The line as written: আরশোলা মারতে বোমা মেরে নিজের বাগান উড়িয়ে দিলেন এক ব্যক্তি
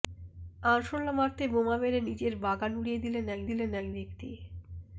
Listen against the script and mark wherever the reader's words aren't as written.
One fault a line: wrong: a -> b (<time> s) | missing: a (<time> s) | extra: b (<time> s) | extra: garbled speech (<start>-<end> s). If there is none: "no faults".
extra: দিলেন এক (3.5 s)